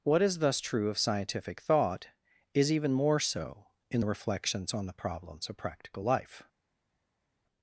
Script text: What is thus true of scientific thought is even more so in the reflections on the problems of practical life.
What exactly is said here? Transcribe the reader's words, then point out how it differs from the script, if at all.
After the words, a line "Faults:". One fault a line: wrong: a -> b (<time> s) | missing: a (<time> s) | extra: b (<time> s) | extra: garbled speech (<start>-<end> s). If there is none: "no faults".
What is thus true of scientific thought is even more so in the reflections on the problems of practical life.
Faults:
no faults